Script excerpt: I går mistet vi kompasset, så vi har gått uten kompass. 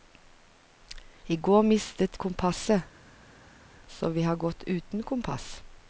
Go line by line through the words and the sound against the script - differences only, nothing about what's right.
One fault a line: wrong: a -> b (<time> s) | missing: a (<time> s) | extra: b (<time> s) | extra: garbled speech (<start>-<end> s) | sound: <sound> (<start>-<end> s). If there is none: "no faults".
missing: vi (2.2 s)